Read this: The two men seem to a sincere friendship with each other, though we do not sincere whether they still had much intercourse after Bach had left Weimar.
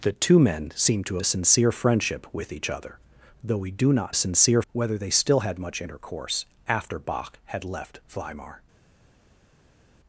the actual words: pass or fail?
pass